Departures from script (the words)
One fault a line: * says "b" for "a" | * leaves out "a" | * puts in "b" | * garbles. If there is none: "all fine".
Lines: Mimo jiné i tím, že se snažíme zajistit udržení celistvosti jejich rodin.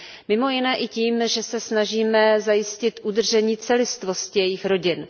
all fine